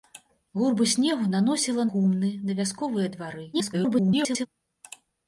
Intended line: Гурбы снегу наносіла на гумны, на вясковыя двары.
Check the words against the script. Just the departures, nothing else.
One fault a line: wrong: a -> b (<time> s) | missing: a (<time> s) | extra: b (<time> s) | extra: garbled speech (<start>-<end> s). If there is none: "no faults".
missing: на (1.9 s)
extra: garbled speech (3.5-4.5 s)